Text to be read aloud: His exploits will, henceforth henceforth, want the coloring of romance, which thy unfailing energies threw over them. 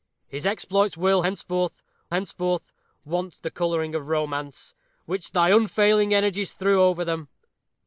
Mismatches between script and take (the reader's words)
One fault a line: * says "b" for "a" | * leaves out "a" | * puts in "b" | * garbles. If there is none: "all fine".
all fine